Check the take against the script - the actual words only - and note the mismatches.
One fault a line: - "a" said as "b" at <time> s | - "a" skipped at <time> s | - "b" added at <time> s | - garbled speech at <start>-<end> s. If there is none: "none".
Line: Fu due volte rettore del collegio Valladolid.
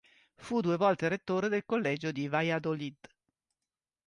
- "di" added at 2.1 s